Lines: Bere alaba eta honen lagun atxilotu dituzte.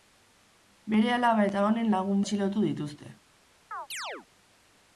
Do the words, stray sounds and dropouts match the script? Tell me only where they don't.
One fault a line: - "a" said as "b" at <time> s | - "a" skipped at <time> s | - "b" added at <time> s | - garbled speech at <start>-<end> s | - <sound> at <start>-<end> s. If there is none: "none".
- chirp at 3.7-4.3 s